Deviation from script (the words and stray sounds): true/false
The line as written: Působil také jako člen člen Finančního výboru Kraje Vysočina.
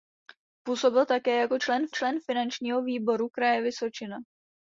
false